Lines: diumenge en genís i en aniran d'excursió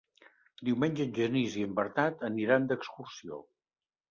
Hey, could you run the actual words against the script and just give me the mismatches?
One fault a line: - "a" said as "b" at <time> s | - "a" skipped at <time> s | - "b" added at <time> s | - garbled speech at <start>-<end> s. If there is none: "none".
- "bernat" added at 1.8 s